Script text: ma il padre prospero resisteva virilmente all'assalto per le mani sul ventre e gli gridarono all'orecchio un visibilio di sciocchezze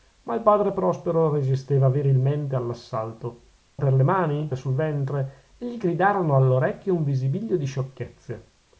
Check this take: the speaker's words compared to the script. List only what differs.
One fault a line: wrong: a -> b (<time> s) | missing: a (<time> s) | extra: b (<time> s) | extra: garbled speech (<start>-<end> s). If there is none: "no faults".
no faults